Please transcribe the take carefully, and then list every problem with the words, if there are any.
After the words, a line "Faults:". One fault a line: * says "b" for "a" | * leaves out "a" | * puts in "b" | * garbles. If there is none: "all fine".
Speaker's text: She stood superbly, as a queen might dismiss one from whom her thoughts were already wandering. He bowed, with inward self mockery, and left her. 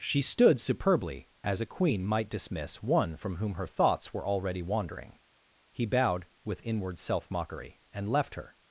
She stood superbly, as a queen might dismiss one from whom her thoughts were already wandering. He bowed, with inward self mockery, and left her.
Faults:
all fine